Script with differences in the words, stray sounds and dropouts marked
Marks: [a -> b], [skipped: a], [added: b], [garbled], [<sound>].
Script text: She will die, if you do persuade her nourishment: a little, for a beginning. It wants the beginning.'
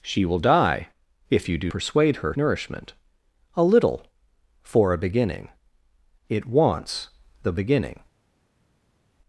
She will die, if you do persuade her nourishment: a little, for a beginning. It wants the beginning.'